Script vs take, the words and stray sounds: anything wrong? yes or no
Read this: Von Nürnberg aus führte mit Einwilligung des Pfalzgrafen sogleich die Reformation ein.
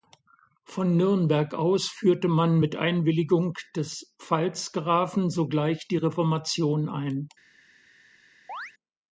yes